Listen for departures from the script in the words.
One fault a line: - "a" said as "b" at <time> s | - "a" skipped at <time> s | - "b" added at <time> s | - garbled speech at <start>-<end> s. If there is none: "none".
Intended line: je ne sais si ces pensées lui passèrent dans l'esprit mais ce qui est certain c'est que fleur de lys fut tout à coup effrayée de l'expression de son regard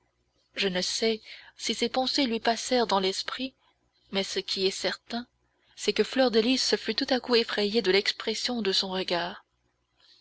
none